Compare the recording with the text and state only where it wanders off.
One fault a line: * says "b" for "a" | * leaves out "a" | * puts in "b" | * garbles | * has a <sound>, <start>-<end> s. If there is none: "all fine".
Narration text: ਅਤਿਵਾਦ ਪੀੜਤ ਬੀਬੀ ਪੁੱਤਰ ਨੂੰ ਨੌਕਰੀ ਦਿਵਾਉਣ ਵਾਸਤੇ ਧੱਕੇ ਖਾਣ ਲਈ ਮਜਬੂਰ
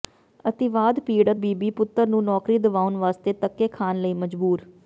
all fine